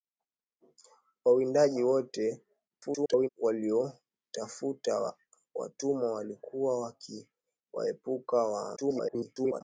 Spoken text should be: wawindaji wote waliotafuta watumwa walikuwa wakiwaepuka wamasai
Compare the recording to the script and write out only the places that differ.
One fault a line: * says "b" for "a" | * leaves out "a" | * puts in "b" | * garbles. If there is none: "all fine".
* garbles
* garbles